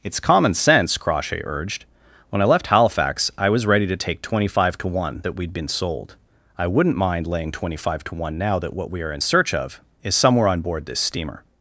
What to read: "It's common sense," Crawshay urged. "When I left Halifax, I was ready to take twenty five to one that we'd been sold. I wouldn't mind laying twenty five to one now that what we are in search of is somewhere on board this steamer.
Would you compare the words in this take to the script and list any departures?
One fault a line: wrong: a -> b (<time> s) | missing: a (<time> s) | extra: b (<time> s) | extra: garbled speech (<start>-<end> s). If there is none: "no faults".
no faults